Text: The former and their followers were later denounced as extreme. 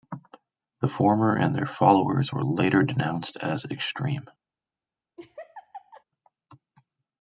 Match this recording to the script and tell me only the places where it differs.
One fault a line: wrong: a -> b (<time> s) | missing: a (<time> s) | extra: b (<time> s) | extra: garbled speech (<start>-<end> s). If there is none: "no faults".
no faults